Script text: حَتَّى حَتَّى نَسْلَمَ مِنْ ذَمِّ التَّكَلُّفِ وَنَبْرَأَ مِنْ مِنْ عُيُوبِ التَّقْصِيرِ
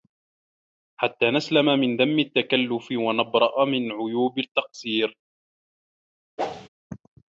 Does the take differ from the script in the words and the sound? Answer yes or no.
yes